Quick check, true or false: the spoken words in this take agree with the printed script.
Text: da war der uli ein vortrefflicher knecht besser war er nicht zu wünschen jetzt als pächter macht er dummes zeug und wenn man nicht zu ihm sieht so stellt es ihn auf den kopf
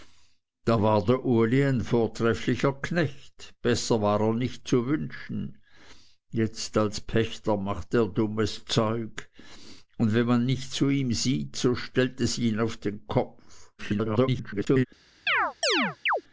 false